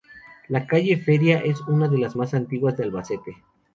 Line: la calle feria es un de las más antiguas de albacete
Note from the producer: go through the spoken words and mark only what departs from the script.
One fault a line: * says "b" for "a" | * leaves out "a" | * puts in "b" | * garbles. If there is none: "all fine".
* says "una" for "un"